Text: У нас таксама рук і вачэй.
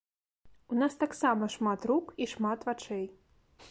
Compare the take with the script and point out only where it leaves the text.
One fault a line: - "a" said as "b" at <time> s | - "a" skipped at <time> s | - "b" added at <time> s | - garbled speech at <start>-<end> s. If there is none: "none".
- "шмат" added at 1.5 s
- "шмат" added at 2.3 s